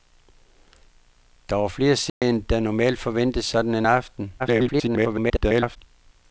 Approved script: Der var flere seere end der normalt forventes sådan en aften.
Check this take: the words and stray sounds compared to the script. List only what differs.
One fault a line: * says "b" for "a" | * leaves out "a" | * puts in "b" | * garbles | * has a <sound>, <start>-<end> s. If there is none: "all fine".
* has a dropout, 2.1-2.2 s
* garbles